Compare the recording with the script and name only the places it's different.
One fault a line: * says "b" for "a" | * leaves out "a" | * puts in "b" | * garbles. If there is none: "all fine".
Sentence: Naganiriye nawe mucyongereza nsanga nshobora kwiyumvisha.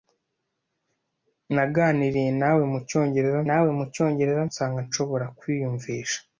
* puts in "nawe mucyongereza"